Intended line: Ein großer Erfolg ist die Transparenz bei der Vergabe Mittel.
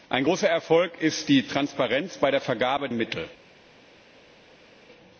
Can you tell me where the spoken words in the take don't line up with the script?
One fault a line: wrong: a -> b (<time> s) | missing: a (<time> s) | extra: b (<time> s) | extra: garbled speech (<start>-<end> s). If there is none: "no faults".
no faults